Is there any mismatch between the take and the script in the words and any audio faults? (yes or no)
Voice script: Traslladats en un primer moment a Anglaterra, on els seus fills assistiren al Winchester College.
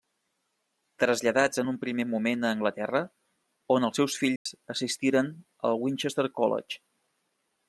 yes